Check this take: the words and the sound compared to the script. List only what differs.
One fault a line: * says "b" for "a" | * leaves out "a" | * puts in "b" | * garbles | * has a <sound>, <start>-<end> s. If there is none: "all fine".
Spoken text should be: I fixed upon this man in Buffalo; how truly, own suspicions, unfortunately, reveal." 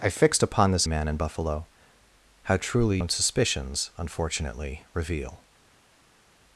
all fine